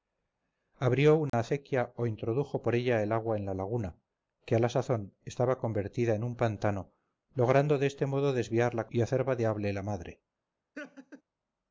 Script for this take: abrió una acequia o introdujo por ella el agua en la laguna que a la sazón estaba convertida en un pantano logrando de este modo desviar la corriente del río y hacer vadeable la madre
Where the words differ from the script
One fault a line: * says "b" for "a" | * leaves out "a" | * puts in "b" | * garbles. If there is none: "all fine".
* leaves out "corriente del río"